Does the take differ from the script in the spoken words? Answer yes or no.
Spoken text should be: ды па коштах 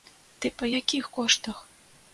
yes